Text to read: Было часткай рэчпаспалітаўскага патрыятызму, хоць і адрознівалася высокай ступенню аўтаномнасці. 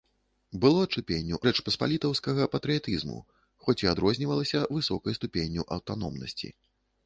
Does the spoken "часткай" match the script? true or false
false